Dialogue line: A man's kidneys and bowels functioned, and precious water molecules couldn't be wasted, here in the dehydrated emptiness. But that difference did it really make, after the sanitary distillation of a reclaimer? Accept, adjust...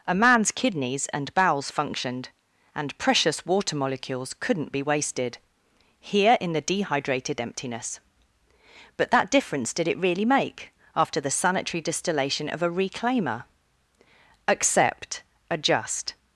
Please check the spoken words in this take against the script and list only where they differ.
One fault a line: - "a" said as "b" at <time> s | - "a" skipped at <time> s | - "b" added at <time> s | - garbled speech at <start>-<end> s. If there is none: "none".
none